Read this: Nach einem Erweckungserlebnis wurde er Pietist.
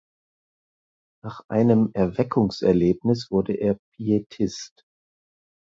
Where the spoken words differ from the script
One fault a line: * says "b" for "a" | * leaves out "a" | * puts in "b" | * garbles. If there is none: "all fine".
all fine